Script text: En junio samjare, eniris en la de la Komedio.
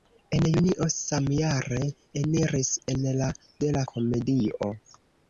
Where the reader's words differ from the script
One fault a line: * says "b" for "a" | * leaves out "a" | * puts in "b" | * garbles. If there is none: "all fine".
all fine